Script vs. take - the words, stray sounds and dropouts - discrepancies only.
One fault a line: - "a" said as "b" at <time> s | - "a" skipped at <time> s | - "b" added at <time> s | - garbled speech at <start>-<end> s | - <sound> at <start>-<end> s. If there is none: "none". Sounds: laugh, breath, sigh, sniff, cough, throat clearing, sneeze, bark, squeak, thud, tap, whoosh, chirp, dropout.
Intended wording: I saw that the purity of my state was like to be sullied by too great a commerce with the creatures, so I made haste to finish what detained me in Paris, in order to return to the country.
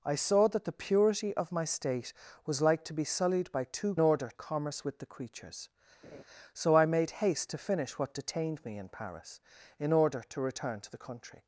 - "great" said as "order" at 4.0 s
- laugh at 6.0-6.2 s